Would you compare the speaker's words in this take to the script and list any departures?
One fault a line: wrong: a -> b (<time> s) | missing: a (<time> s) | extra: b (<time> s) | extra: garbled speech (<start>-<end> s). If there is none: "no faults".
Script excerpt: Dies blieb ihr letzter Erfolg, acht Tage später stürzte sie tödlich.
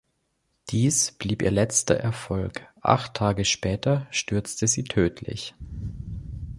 no faults